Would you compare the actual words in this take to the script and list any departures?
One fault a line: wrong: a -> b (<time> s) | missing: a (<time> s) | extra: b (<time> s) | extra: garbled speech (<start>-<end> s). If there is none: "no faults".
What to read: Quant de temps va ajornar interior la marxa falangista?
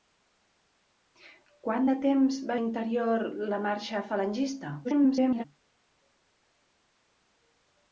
missing: ajornar (2.6 s)
extra: garbled speech (4.8-5.4 s)